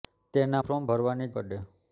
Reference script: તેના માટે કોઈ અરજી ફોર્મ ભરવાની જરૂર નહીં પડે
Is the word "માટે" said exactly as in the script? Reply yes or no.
no